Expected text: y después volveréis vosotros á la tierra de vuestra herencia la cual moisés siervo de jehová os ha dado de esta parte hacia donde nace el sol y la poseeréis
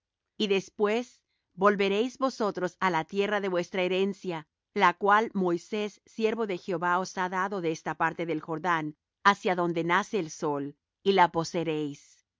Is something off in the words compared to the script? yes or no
yes